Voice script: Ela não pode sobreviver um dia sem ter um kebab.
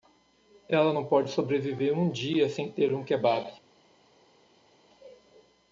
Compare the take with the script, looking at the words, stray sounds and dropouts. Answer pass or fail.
pass